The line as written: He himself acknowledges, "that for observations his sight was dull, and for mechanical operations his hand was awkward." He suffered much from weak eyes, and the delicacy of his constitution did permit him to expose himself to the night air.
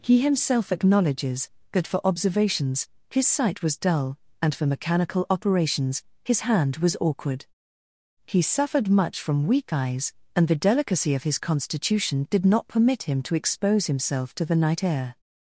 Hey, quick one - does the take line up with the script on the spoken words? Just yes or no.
no